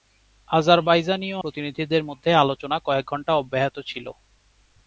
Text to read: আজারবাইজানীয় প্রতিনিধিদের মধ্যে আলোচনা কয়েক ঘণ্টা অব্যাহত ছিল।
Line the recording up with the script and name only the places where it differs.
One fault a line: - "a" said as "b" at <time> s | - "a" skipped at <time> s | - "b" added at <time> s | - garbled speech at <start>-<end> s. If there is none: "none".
none